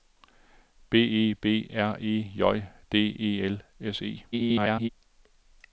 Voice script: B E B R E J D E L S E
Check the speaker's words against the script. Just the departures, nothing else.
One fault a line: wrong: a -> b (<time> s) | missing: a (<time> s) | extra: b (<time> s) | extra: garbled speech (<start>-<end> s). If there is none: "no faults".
extra: garbled speech (4.3-4.9 s)